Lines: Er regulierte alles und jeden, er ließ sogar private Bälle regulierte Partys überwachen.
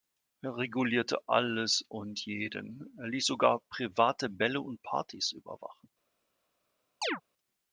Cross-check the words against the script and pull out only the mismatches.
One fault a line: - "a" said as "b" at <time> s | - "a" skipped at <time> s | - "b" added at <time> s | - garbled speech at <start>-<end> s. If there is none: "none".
- "regulierte" said as "und" at 4.6 s